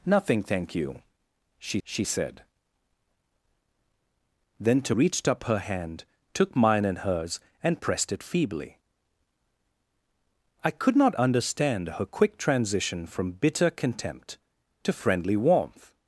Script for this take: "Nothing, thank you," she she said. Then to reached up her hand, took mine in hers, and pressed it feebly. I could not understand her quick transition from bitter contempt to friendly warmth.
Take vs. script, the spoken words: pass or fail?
pass